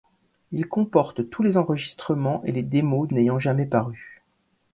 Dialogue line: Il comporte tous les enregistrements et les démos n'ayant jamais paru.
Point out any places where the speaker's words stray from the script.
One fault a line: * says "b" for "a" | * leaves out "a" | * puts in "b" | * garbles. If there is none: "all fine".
all fine